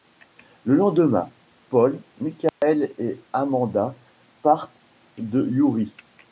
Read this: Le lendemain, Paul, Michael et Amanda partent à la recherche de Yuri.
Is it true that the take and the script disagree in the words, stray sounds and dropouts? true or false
true